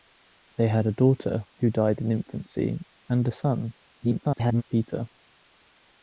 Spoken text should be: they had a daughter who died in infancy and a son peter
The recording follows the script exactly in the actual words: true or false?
false